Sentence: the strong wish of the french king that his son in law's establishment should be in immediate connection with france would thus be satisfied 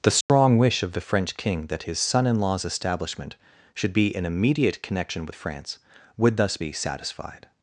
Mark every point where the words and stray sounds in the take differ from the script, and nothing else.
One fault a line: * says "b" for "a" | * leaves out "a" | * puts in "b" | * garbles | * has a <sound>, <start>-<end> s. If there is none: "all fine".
* has a dropout, 0.2-0.3 s